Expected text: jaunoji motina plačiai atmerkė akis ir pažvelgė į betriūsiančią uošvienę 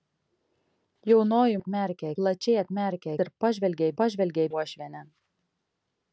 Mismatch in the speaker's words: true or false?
true